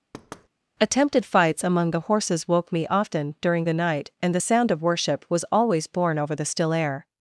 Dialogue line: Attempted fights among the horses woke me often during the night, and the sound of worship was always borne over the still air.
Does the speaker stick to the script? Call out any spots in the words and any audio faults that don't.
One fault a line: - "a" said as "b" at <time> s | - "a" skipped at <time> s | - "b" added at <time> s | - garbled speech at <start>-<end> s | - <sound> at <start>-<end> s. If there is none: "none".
- thud at 0.1-0.5 s